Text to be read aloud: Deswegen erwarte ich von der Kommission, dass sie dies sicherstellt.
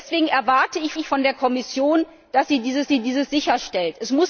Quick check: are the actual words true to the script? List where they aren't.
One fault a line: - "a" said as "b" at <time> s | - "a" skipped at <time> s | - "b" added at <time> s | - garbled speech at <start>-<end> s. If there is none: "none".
- "ich" added at 0.9 s
- "sie dies" added at 2.9 s